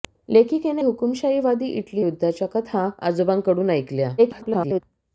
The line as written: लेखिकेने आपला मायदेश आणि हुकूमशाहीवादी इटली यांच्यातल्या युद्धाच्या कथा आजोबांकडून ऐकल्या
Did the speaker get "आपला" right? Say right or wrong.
wrong